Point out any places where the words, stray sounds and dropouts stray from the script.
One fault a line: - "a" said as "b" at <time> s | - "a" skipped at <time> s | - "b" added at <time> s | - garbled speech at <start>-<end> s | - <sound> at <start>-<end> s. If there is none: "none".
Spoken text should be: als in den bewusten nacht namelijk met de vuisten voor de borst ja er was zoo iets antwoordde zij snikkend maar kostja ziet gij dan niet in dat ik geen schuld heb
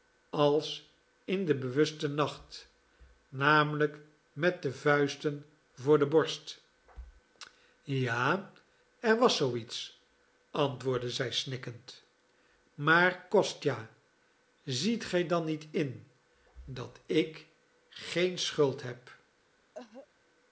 - cough at 19.7-20.1 s